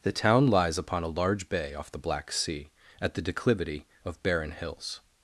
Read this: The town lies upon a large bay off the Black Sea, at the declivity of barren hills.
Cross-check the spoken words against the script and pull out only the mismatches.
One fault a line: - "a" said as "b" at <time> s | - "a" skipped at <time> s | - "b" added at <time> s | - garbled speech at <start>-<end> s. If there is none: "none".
none